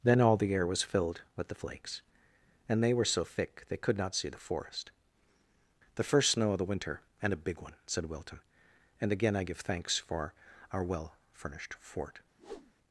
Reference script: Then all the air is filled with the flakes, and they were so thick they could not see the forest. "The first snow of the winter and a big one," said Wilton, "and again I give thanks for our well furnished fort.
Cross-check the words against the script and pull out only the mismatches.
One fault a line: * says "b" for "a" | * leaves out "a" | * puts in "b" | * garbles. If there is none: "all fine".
* says "was" for "is"